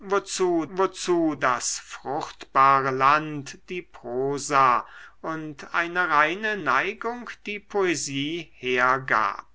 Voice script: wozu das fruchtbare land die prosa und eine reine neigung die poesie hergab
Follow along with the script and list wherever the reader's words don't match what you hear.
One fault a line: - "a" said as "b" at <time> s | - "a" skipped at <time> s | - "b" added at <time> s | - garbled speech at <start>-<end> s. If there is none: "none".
- "wozu" added at 0.7 s